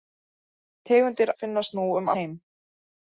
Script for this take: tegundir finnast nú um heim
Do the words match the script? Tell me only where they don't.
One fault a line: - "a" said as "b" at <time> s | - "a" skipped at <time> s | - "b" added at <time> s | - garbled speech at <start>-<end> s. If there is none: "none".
none